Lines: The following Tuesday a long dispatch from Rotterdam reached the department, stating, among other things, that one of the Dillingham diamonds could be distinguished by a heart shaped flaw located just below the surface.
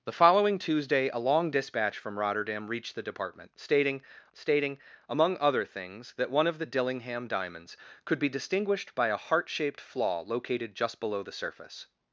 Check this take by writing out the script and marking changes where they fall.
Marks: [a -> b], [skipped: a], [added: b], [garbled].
The following Tuesday a long dispatch from Rotterdam reached the department, stating, [added: stating] among other things, that one of the Dillingham diamonds could be distinguished by a heart shaped flaw located just below the surface.